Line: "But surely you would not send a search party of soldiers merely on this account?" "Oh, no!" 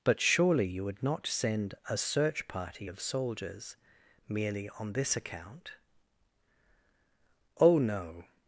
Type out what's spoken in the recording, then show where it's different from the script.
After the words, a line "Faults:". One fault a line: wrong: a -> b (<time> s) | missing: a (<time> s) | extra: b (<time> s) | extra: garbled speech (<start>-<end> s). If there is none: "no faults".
"But surely you would not send a search party of soldiers merely on this account?" "Oh, no!"
Faults:
no faults